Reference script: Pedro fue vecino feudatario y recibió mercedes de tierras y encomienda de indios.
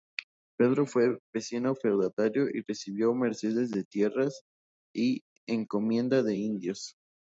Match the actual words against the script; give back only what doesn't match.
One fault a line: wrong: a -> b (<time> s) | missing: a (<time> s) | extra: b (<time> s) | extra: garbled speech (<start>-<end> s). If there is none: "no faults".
no faults